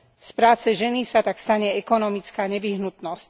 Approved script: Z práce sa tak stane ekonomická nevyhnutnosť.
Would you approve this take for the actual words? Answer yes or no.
no